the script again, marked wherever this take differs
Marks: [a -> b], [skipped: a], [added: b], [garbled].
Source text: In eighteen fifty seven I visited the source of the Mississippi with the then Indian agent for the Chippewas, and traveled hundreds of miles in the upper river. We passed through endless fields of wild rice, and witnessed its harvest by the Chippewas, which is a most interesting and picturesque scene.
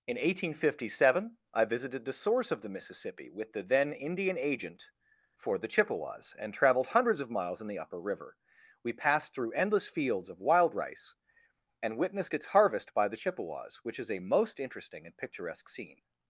In eighteen fifty seven I visited the source of the Mississippi with the then Indian agent for the Chippewas, and traveled hundreds of miles in the upper river. We passed through endless fields of wild rice, and witnessed its harvest by the Chippewas, which is a most interesting and picturesque scene.